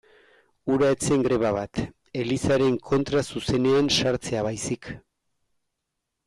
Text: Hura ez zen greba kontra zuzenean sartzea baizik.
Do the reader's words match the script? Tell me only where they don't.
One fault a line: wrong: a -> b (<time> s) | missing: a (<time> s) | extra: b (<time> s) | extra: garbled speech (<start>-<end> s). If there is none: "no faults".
extra: bat Elizaren (1.6 s)